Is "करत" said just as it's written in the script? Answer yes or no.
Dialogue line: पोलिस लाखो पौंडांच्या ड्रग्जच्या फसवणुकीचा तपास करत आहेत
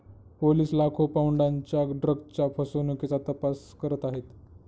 yes